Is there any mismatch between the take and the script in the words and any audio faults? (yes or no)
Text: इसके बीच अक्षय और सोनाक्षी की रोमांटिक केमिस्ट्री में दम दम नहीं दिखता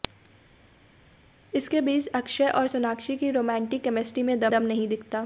no